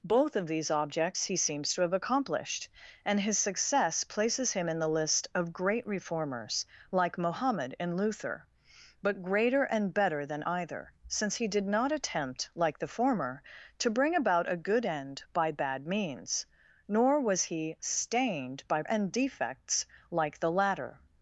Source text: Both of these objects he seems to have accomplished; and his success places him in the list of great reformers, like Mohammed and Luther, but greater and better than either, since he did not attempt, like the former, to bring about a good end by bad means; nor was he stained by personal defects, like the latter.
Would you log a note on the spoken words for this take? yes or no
yes